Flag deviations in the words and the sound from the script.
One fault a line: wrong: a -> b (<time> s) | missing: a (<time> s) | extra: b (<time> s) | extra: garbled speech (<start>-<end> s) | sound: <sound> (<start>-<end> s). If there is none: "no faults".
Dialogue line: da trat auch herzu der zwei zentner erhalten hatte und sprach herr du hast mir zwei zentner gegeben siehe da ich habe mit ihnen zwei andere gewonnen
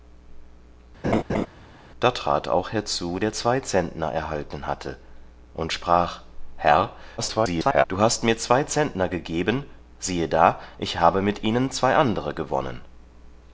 sound: laugh (1.0-1.5 s)
extra: garbled speech (7.2-7.8 s)